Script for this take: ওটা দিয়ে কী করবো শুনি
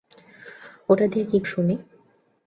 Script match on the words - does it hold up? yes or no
no